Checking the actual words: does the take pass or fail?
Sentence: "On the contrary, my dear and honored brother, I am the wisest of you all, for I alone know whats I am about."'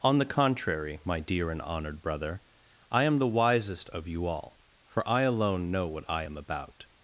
fail